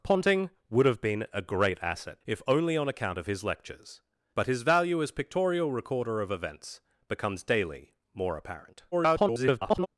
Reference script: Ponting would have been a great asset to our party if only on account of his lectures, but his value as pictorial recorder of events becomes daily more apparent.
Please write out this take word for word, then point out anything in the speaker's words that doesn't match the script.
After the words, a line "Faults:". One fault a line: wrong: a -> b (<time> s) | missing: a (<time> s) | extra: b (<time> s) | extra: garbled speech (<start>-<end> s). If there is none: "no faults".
Ponting would have been a great asset if only on account of his lectures, but his value as pictorial recorder of events becomes daily more apparent. [garbled]
Faults:
missing: to our party (2.2 s)
extra: garbled speech (8.9-9.9 s)